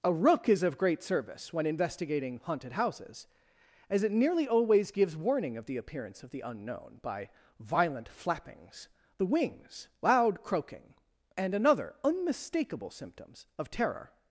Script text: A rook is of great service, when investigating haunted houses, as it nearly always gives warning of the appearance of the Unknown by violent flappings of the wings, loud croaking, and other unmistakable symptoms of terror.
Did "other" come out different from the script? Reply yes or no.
yes